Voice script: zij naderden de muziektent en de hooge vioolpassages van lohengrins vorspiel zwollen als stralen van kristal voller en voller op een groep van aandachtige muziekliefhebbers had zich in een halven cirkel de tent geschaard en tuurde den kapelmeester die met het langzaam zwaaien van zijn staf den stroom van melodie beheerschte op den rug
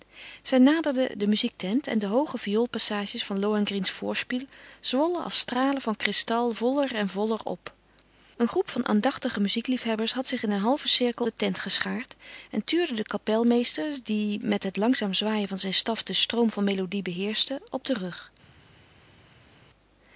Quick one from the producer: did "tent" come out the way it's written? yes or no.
yes